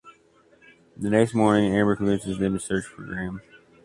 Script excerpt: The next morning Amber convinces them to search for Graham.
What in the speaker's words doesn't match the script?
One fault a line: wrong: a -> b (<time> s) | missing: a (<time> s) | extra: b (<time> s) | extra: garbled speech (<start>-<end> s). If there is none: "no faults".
no faults